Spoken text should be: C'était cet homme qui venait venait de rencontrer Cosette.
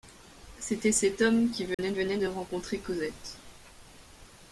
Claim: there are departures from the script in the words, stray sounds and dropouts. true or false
true